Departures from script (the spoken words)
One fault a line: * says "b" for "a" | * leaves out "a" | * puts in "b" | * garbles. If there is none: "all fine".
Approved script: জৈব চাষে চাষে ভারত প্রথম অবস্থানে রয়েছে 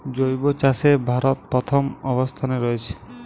* leaves out "চাষে"